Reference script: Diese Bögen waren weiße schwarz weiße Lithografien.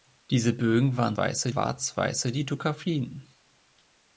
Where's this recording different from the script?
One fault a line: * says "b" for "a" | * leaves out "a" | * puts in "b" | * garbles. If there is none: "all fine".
all fine